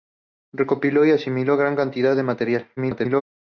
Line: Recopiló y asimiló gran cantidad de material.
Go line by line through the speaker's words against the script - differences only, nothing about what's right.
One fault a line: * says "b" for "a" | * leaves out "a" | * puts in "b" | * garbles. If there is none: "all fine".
* garbles